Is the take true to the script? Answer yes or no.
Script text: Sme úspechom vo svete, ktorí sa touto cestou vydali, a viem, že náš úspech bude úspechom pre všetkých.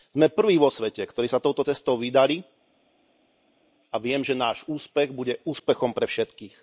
no